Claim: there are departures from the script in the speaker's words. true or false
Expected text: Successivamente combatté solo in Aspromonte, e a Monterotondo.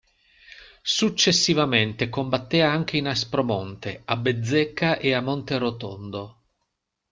true